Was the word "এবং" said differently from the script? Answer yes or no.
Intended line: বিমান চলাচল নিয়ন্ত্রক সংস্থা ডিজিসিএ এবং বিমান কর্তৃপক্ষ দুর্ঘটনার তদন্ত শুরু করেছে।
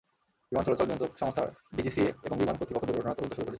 no